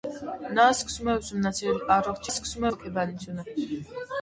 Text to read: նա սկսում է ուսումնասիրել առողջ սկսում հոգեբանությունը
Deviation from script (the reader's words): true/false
false